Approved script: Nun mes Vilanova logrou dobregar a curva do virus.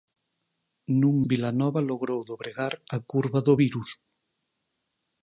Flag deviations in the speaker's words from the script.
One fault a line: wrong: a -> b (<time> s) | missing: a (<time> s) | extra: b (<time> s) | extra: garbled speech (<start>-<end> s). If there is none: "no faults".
missing: mes (1.1 s)